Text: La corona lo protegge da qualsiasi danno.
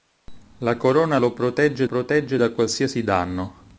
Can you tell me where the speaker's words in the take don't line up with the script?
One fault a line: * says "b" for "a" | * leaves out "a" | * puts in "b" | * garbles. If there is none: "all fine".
* puts in "protegge"